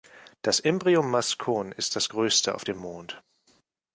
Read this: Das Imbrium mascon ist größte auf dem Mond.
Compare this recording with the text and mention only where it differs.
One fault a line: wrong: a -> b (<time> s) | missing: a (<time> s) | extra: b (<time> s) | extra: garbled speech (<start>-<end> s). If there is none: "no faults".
extra: das (1.9 s)